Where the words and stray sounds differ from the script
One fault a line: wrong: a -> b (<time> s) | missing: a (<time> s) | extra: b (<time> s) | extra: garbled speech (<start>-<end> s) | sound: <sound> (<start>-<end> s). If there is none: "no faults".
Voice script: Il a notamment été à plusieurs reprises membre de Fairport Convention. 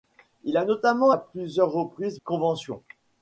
missing: été (1.1 s)
missing: membre de Fairport (2.2 s)